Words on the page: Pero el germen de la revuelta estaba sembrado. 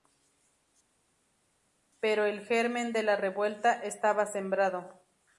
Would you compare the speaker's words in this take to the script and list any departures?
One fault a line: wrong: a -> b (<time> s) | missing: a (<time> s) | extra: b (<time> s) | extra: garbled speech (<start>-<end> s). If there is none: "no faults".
no faults